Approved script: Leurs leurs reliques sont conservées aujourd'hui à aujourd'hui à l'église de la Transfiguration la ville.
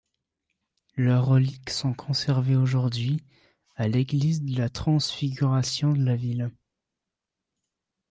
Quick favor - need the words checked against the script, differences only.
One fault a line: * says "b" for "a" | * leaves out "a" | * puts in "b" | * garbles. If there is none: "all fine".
* leaves out "leurs"
* leaves out "aujourd'hui à"
* puts in "de"